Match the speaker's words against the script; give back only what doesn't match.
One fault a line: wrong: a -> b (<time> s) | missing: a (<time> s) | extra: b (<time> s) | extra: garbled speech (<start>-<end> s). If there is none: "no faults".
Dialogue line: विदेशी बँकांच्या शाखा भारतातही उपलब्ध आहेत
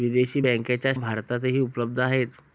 missing: शाखा (0.9 s)